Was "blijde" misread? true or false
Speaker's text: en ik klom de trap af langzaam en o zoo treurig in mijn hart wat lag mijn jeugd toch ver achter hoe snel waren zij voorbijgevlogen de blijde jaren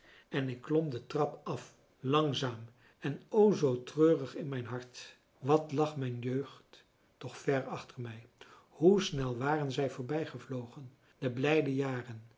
false